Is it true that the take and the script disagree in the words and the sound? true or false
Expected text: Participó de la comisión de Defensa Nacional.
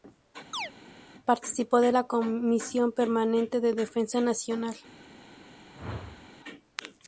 true